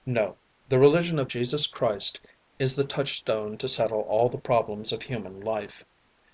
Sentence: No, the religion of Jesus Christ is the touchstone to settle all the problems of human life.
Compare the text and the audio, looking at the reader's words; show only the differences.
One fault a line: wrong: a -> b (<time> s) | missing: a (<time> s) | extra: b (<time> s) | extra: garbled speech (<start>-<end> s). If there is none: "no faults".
no faults